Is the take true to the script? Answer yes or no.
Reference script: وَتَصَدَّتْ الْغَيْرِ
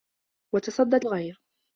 yes